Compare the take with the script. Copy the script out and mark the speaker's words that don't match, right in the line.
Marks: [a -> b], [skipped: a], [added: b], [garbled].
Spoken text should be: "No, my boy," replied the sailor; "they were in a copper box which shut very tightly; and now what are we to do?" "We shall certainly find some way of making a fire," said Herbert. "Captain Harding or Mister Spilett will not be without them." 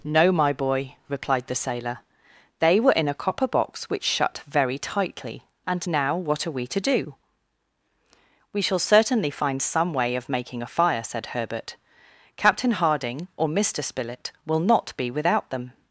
"No, my boy," replied the sailor; "they were in a copper box which shut very tightly; and now what are we to do?" "We shall certainly find some way of making a fire," said Herbert. "Captain Harding or Mister Spilett will not be without them."